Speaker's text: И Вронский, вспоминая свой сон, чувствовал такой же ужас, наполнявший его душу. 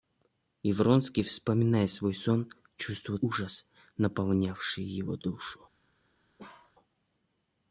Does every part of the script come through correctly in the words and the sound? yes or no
no